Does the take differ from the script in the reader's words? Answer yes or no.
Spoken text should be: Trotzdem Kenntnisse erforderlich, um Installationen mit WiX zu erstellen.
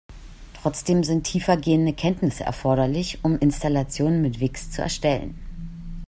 yes